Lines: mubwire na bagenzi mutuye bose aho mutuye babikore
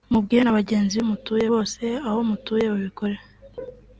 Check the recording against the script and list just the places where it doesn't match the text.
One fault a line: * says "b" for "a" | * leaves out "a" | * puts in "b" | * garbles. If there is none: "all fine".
all fine